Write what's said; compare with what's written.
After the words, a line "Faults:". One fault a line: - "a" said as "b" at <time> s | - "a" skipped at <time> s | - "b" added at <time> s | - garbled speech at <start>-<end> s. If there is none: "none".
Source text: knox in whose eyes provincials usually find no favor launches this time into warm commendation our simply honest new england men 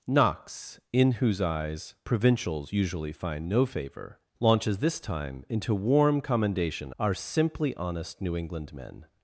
knox in whose eyes provincials usually find no favor launches this time into warm commendation our simply honest new england men
Faults:
none